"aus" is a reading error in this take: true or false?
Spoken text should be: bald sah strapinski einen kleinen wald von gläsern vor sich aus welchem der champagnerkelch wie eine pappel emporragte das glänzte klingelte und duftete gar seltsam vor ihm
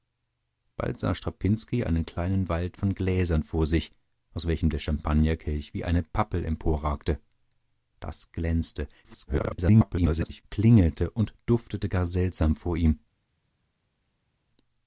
false